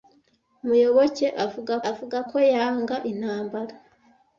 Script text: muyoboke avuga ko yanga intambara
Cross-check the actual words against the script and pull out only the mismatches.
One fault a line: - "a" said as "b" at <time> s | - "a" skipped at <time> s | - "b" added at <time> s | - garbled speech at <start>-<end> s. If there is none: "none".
- "avuga" added at 1.9 s